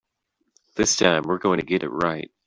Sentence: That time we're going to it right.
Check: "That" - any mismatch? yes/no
yes